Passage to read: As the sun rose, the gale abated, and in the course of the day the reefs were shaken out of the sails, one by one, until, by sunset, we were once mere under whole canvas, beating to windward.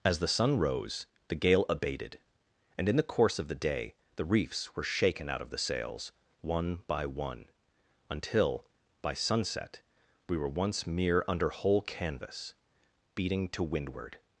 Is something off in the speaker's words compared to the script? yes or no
no